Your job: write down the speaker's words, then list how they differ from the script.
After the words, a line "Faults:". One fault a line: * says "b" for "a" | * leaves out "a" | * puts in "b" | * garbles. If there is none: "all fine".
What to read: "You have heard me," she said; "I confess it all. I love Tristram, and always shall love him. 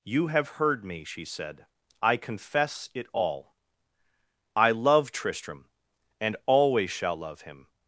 "You have heard me," she said; "I confess it all. I love Tristram, and always shall love him.
Faults:
all fine